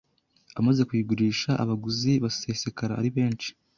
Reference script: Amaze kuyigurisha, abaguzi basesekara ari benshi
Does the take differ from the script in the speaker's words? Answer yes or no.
no